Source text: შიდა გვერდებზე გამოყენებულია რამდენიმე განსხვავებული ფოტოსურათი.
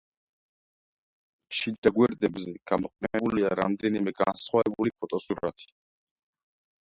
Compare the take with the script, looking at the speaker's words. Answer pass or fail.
pass